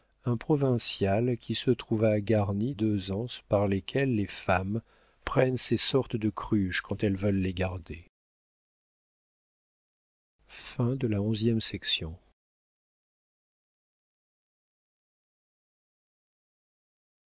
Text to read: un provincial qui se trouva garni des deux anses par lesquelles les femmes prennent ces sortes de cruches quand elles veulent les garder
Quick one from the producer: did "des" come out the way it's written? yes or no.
no